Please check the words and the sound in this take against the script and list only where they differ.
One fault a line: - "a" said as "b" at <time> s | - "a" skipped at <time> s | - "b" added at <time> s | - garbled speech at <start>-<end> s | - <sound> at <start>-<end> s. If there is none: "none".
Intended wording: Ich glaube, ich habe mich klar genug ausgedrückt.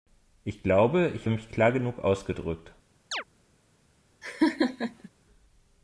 - "habe" skipped at 1.3 s
- chirp at 3.1-3.2 s
- laugh at 4.2-5.1 s